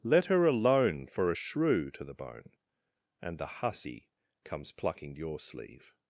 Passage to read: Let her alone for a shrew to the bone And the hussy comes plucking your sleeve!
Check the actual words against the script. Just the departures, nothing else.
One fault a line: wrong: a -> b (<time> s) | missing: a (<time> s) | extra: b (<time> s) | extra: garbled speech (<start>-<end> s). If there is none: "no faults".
no faults